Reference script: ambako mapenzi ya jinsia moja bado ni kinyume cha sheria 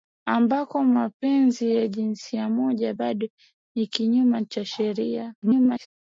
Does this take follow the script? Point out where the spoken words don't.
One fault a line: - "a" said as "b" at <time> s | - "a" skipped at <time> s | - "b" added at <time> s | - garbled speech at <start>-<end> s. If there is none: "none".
- garbled speech at 5.4-5.9 s